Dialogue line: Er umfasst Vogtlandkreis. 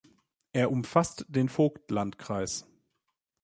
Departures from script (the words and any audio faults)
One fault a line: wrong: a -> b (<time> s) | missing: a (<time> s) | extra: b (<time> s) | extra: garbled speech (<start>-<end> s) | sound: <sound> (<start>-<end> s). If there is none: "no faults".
extra: den (1.3 s)